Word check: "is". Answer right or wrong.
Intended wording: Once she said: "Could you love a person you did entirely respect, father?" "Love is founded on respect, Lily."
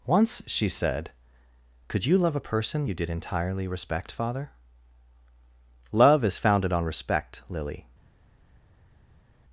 right